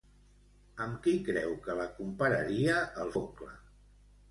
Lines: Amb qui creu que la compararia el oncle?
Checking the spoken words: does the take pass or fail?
pass